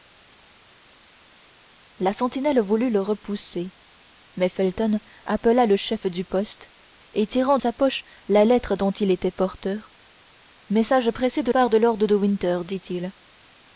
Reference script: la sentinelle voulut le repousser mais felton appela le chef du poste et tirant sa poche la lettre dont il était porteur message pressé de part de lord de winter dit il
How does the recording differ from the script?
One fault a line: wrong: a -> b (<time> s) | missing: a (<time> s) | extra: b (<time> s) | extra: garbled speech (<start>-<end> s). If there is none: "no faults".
no faults